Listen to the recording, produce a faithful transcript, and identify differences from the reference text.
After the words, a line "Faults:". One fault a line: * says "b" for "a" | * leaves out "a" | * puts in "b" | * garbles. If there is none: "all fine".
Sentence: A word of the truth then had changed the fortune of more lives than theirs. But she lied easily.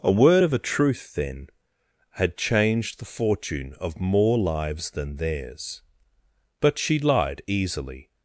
A word of a truth then had changed the fortune of more lives than theirs. But she lied easily.
Faults:
* says "a" for "the"